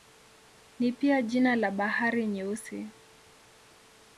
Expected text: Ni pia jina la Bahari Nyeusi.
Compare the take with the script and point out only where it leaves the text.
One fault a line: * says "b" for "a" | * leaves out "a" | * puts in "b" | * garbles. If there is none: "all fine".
all fine